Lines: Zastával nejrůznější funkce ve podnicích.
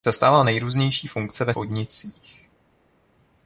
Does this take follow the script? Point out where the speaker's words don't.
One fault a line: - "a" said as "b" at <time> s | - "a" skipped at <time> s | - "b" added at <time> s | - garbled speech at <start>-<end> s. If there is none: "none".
none